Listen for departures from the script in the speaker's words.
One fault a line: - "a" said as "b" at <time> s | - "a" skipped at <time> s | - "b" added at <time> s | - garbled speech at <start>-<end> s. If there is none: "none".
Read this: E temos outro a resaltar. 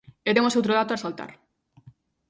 - "dato" added at 0.8 s